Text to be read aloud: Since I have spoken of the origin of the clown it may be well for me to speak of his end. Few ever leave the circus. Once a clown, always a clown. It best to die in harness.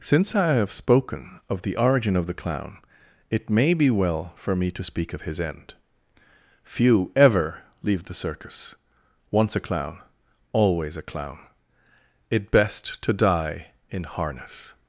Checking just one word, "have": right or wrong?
right